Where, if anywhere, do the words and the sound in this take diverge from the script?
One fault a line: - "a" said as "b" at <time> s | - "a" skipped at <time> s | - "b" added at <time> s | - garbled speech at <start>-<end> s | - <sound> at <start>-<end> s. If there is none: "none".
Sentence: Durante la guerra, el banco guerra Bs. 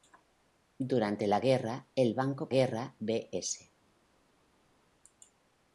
none